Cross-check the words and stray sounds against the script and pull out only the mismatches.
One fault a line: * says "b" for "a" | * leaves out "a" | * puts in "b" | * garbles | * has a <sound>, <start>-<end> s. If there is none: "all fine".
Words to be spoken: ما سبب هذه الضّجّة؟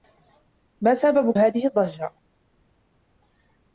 all fine